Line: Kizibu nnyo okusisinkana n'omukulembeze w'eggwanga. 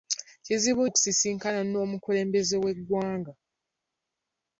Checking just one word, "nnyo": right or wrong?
wrong